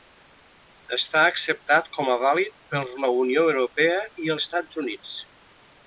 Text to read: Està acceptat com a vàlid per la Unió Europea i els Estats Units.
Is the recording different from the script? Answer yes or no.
yes